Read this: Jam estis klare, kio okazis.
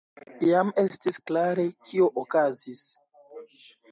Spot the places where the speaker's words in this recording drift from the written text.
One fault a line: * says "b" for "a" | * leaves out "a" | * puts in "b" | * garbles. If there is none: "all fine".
all fine